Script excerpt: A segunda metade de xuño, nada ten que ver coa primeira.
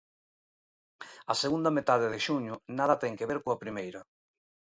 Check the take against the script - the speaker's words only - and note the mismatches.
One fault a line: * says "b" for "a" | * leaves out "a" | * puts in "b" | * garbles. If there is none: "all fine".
all fine